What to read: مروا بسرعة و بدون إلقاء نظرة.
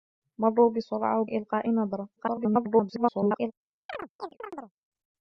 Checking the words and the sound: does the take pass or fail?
fail